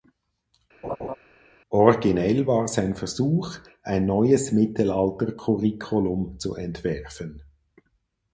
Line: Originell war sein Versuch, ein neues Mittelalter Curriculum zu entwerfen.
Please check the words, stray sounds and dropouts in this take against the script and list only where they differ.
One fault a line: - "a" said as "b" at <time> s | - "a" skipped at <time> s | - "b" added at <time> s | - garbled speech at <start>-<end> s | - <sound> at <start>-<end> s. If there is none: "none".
- laugh at 0.8-1.2 s